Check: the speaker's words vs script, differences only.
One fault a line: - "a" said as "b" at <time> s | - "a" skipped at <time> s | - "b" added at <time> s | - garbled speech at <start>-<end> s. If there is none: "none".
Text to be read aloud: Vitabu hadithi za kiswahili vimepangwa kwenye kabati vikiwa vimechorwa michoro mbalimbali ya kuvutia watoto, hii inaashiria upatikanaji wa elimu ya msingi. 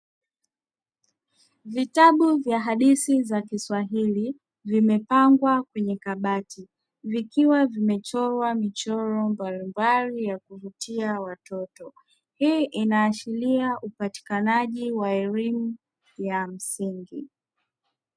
- "vya" added at 2.4 s